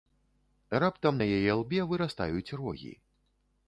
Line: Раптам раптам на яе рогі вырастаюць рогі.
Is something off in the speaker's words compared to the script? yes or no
yes